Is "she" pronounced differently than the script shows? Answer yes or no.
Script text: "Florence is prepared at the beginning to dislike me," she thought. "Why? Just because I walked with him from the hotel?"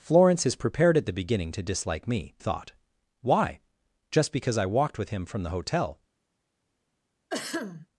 yes